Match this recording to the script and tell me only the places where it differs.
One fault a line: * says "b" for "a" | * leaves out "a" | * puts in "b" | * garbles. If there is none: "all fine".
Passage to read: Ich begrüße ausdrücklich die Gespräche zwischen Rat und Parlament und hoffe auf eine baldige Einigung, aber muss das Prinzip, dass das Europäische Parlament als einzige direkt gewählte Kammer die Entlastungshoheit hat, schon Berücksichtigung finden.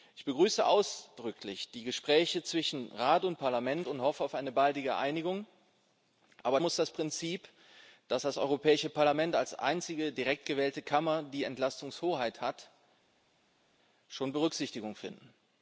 all fine